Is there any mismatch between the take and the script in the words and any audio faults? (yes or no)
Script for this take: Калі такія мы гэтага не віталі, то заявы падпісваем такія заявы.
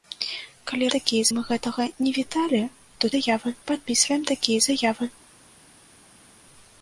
no